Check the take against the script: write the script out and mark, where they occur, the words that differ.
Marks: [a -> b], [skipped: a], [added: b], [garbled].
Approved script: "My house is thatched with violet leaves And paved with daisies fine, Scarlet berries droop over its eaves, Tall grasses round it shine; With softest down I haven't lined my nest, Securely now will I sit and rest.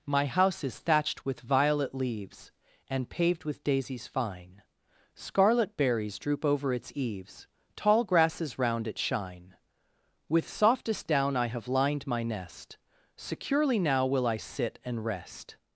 "My house is thatched with violet leaves And paved with daisies fine, Scarlet berries droop over its eaves, Tall grasses round it shine; With softest down I [haven't -> have] lined my nest, Securely now will I sit and rest.